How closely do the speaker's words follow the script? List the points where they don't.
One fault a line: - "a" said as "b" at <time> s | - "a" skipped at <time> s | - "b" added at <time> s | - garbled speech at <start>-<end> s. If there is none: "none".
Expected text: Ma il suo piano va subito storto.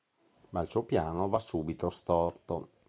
none